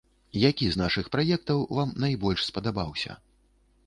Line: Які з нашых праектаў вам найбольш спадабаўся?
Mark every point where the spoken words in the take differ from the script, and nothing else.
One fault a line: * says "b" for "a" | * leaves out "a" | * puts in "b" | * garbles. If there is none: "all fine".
all fine